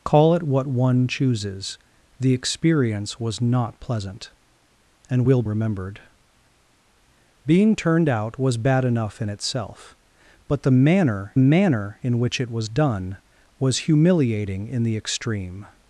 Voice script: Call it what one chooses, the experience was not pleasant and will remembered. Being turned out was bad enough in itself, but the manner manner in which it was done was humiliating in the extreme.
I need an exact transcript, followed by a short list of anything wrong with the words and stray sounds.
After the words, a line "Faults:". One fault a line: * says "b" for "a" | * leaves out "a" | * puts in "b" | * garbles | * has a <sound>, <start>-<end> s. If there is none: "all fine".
Call it what one chooses, the experience was not pleasant and will remembered. Being turned out was bad enough in itself, but the manner manner in which it was done was humiliating in the extreme.
Faults:
all fine